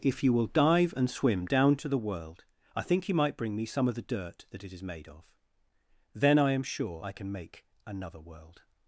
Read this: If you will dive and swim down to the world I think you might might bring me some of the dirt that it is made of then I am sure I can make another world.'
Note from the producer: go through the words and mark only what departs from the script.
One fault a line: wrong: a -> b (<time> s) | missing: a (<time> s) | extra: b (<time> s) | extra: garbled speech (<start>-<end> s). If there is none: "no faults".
missing: might (3.4 s)